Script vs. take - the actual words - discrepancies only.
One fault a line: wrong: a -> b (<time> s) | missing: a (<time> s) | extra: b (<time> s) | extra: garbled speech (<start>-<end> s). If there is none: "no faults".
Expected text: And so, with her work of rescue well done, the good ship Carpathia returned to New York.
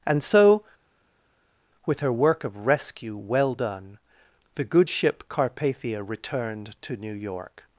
no faults